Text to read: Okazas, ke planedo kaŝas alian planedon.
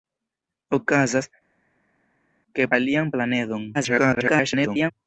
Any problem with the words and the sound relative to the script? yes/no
yes